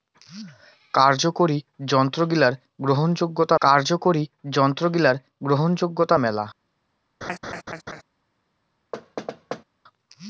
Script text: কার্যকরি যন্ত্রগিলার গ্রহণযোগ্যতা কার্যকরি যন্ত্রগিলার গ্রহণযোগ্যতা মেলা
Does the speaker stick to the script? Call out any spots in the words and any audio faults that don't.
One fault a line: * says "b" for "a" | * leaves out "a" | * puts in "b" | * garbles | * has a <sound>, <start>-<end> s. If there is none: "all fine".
* has a laugh, 7.2-8.0 s
* has a thud, 8.9-9.6 s